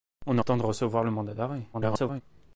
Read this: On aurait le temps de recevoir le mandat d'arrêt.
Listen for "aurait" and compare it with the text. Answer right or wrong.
wrong